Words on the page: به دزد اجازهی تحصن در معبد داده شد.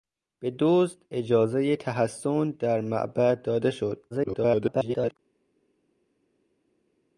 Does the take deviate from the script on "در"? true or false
false